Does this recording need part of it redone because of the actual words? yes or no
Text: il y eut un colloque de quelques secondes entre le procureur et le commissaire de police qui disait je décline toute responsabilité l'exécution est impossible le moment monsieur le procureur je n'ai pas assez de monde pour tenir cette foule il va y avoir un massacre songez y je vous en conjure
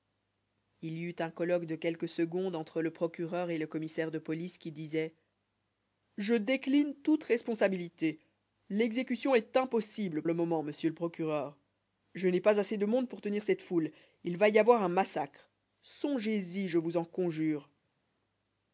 no